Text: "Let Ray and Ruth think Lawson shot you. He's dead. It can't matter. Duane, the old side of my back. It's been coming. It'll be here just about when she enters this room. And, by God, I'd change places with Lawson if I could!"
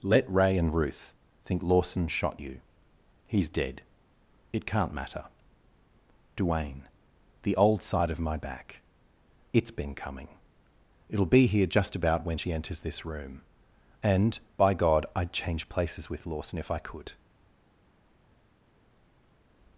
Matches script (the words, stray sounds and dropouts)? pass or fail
pass